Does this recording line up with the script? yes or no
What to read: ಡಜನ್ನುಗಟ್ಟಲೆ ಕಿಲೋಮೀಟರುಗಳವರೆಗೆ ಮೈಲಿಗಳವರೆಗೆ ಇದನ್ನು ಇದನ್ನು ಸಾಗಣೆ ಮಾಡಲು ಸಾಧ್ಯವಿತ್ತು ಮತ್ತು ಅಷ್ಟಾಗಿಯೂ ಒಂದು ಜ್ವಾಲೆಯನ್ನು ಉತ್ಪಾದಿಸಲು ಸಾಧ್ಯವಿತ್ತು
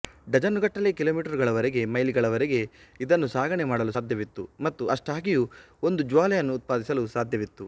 no